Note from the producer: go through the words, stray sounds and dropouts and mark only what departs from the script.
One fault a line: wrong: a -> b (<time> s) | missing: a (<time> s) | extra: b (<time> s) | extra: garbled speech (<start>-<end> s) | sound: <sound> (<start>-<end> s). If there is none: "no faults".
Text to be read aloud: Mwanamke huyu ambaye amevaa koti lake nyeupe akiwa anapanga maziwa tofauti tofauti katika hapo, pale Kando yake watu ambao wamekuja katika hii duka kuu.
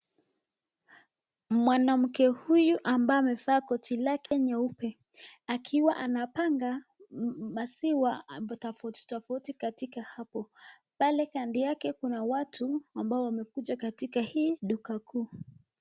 sound: dropout (4.3-4.3 s)
extra: kuna (11.9 s)